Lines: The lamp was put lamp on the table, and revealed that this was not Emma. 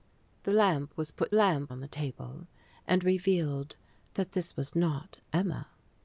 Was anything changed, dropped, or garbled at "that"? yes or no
no